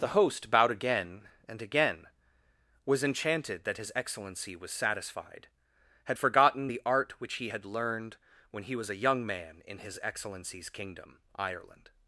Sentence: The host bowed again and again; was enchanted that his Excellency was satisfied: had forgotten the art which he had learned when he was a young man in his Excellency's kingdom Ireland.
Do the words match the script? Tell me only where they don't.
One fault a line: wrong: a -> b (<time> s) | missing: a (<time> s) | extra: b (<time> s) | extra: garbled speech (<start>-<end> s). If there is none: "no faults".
no faults